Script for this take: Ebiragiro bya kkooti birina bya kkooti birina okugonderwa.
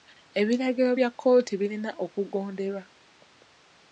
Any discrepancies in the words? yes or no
yes